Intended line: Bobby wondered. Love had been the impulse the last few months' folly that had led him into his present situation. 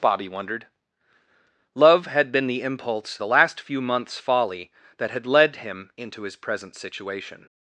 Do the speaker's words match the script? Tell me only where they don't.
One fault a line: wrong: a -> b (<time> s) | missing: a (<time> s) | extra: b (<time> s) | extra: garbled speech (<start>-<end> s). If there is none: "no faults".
no faults